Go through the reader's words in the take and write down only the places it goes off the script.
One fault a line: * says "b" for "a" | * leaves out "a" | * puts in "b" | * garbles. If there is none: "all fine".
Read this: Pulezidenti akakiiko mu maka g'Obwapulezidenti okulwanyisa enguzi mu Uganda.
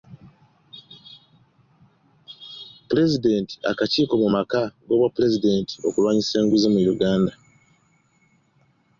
all fine